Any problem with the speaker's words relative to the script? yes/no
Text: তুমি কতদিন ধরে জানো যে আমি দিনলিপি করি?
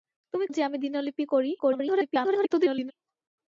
yes